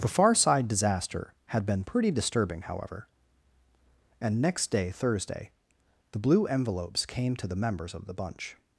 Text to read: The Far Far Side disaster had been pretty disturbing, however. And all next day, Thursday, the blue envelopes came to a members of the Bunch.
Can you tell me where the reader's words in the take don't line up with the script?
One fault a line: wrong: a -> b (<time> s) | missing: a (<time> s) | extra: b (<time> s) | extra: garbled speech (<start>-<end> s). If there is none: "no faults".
missing: Far (0.3 s)
missing: all (4.4 s)
wrong: a -> the (7.5 s)